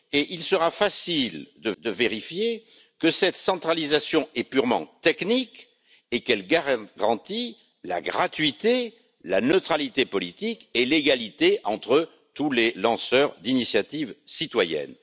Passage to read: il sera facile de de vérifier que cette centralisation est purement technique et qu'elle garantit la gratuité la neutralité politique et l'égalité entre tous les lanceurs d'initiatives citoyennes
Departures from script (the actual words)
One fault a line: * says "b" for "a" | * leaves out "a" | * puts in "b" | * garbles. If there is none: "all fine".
all fine